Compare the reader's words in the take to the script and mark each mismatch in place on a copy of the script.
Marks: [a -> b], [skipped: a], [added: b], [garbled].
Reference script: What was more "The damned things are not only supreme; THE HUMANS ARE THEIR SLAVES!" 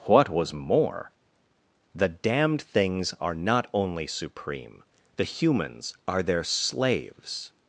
What was more "The damned things are not only supreme; THE HUMANS ARE THEIR SLAVES!"